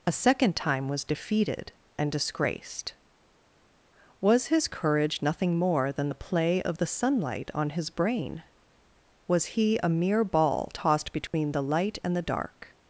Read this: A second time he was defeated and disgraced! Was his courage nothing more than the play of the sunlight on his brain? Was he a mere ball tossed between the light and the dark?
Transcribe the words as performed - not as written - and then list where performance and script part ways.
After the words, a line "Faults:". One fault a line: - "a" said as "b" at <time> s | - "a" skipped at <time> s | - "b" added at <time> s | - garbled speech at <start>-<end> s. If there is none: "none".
A second time was defeated and disgraced! Was his courage nothing more than the play of the sunlight on his brain? Was he a mere ball tossed between the light and the dark?
Faults:
- "he" skipped at 0.9 s